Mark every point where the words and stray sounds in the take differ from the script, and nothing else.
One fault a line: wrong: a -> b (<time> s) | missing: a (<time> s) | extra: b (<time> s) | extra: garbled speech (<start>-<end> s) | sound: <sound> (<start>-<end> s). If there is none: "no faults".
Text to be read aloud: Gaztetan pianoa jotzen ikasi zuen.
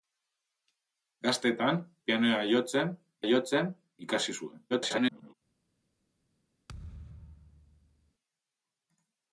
extra: jotzen (3.3 s)
extra: garbled speech (4.7-5.3 s)
sound: thud (6.7-8.1 s)